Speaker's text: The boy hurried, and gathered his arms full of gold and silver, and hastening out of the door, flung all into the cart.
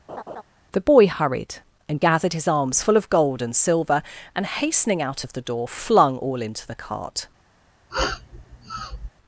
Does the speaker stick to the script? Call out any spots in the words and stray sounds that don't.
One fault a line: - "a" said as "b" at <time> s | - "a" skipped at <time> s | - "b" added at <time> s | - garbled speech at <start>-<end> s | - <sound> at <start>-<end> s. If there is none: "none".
- laugh at 0.1-0.4 s
- sniff at 7.9-9.1 s